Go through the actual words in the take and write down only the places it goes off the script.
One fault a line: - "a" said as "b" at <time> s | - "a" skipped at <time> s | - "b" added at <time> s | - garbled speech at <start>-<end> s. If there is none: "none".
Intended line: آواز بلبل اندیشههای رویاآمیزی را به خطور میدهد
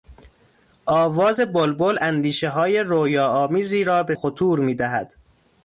none